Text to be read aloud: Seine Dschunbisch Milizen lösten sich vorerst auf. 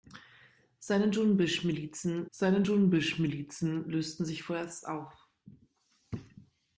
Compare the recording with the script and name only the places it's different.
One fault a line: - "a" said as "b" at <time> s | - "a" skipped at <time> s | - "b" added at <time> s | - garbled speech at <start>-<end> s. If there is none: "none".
- "seine Dschunbisch Milizen" added at 2.3 s